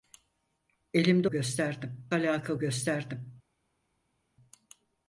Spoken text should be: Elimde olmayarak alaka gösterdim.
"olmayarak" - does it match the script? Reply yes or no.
no